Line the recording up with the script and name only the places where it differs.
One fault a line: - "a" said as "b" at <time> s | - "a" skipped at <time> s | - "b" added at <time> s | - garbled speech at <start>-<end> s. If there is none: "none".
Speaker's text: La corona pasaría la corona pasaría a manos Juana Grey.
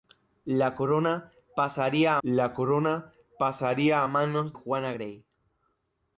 none